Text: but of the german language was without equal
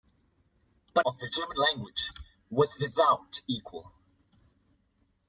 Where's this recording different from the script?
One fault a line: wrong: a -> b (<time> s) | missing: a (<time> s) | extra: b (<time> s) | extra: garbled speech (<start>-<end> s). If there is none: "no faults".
no faults